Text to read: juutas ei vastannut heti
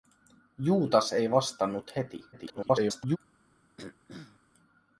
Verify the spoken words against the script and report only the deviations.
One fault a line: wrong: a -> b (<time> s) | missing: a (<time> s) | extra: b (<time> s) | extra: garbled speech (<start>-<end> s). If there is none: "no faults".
extra: garbled speech (2.3-3.2 s)